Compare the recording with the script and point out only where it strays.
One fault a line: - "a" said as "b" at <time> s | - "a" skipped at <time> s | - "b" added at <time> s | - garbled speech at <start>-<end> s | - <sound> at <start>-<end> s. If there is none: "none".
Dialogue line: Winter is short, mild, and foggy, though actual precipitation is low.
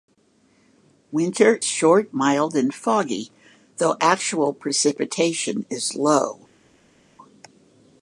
- "is" skipped at 1.6 s